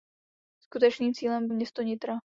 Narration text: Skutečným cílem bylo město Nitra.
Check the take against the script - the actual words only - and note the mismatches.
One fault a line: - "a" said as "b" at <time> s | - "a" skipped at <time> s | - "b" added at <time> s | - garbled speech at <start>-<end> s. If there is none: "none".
- "bylo" skipped at 1.5 s